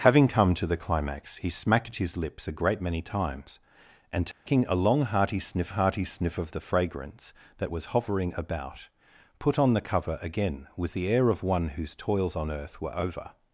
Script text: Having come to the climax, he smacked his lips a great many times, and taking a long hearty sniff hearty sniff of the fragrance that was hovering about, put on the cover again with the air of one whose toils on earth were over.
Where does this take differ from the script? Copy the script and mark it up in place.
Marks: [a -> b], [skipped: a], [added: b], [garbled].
Having come to the climax, he smacked his lips a great many times, and taking a long hearty sniff hearty sniff of the fragrance that was hovering about, put on the cover again with the air of one whose toils on earth were over.